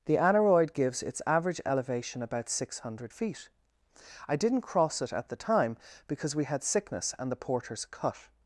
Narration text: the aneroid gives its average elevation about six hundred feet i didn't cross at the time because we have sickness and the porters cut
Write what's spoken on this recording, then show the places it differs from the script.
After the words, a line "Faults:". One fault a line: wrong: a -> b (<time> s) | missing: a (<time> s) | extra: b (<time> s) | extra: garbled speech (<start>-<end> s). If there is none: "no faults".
the aneroid gives its average elevation about six hundred feet i didn't cross it at the time because we had sickness and the porters cut
Faults:
extra: it (5.0 s)
wrong: have -> had (6.4 s)